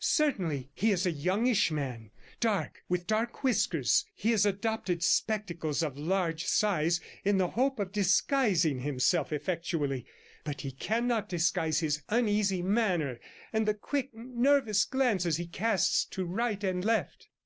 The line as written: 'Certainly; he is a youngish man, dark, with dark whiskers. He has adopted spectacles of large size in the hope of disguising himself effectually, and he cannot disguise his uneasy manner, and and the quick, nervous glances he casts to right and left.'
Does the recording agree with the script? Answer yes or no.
no